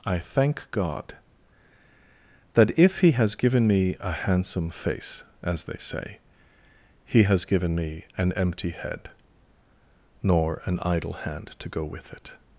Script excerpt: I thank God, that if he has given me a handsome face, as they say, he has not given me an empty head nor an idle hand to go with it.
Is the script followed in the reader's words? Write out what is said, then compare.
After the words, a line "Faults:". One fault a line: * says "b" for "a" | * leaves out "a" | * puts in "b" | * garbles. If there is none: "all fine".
I thank God, that if he has given me a handsome face, as they say, he has given me an empty head nor an idle hand to go with it.
Faults:
* leaves out "not"